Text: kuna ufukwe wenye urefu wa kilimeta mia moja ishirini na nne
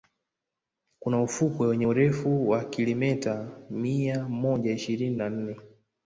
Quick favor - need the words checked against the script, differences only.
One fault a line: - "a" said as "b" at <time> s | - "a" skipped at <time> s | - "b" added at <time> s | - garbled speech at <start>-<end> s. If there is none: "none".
none